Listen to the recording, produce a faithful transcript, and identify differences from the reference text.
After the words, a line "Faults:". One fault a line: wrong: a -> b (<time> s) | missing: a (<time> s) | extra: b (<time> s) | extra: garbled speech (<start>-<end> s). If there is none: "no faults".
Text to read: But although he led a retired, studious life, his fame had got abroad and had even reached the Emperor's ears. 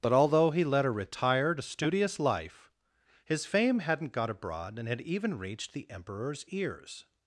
But although he led a retired, studious life, his fame hadn't got abroad and had even reached the Emperor's ears.
Faults:
wrong: had -> hadn't (3.8 s)